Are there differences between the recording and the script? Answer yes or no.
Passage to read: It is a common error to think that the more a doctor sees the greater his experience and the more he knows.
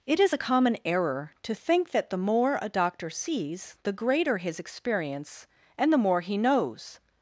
no